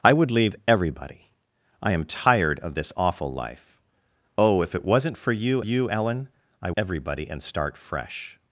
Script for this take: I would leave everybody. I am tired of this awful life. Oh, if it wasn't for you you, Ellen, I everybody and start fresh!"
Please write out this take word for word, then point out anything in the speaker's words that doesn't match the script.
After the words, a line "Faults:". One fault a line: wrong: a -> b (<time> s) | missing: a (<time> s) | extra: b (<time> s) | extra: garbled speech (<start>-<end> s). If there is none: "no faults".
I would leave everybody. I am tired of this awful life. Oh, if it wasn't for you you, Ellen, I everybody and start fresh!"
Faults:
no faults